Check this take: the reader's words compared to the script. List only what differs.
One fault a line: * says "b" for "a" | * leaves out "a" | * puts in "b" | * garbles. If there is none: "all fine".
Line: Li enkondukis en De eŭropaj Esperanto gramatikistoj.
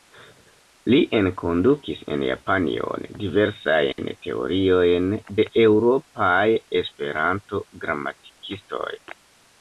* puts in "Japanion diversajn teoriojn"